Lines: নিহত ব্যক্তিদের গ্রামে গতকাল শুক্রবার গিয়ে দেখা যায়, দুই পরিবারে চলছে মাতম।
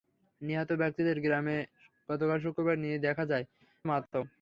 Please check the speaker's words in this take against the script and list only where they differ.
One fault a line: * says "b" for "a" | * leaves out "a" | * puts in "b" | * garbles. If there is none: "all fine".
* leaves out "দুই পরিবারে চলছে"